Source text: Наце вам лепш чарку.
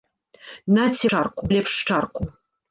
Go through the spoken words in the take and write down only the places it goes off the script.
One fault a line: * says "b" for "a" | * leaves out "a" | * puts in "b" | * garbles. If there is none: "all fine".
* says "чарку" for "вам"